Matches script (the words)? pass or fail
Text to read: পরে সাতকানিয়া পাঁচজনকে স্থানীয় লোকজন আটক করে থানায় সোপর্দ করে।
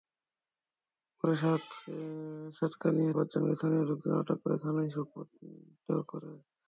pass